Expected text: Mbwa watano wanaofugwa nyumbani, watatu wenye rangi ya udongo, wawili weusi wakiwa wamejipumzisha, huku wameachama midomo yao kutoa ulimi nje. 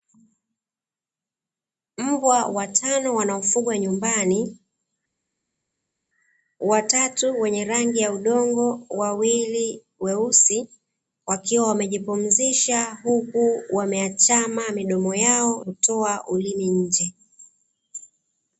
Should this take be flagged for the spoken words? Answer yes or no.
no